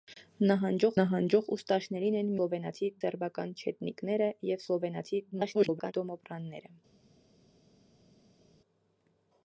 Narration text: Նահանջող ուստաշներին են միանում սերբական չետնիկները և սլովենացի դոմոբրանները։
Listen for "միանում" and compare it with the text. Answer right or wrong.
wrong